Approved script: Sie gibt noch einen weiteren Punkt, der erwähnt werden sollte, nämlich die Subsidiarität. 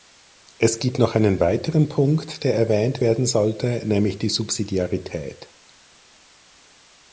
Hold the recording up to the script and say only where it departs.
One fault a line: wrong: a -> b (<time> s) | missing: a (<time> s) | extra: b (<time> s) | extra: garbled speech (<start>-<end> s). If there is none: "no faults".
wrong: Sie -> Es (0.6 s)